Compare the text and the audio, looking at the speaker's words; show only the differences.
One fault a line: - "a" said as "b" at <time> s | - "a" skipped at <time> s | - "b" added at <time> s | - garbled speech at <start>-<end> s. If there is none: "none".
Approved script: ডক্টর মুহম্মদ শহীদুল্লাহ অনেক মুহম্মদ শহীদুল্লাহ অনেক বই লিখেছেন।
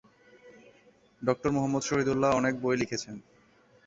- "মুহম্মদ শহীদুল্লাহ অনেক" skipped at 2.5 s